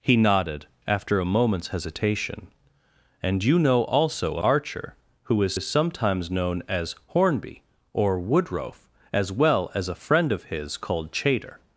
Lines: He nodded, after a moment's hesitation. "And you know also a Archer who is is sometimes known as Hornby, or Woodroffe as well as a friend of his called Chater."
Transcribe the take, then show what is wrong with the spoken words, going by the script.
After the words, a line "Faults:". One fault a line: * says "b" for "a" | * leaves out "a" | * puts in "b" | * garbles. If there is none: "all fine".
He nodded, after a moment's hesitation. "And you know also a Archer who is is sometimes known as Hornby, or Woodroffe as well as a friend of his called Chater."
Faults:
all fine